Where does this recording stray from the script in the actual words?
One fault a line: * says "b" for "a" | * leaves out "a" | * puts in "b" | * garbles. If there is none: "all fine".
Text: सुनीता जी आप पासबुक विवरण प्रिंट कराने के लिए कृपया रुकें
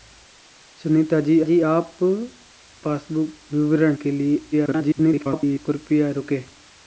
* puts in "जी"
* leaves out "प्रिंट कराने"
* garbles